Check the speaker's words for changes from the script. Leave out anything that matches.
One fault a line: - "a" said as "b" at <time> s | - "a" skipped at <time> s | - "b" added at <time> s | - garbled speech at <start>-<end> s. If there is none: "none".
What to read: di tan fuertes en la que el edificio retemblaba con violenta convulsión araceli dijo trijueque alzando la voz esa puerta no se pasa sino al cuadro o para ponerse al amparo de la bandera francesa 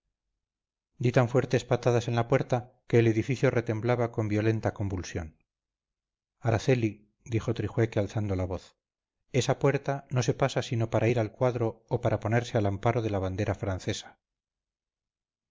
- "patadas" added at 1.7 s
- "puerta" added at 2.3 s
- "para ir" added at 10.9 s